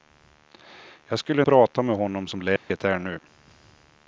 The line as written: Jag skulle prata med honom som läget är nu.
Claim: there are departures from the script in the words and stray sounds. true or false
true